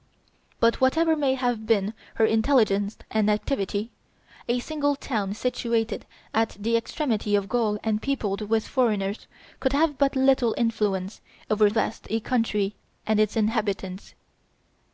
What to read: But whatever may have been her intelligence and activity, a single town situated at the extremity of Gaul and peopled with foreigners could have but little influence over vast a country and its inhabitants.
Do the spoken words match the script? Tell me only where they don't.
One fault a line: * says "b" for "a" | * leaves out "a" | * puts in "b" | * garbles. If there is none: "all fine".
all fine